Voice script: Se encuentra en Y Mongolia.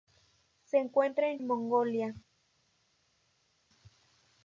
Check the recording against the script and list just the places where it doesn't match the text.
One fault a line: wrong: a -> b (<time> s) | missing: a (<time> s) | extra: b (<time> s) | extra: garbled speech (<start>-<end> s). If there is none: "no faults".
no faults